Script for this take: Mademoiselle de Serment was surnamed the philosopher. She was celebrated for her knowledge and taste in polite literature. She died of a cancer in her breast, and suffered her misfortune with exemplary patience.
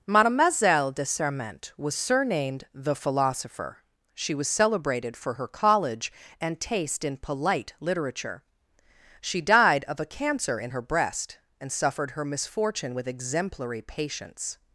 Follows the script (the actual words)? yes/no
no